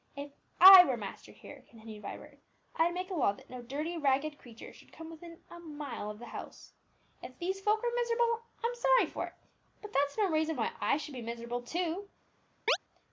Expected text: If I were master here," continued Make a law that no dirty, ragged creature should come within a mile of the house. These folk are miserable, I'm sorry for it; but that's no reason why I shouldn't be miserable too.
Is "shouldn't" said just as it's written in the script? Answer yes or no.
no